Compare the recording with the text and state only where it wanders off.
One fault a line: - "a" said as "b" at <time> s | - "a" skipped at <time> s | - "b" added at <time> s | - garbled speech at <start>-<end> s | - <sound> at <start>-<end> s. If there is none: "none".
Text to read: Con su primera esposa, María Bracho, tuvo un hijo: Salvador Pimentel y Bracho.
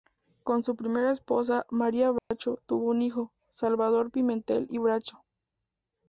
- dropout at 2.2-2.3 s